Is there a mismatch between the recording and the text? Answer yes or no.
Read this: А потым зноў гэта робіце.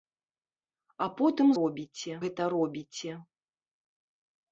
yes